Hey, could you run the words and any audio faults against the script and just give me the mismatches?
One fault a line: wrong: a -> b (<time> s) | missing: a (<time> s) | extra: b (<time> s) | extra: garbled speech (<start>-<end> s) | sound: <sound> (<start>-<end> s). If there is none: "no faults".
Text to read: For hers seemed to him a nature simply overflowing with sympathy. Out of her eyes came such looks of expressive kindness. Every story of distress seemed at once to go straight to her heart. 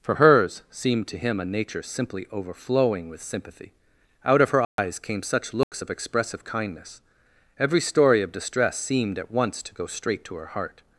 sound: dropout (4.6-4.8 s)
sound: dropout (5.6-5.7 s)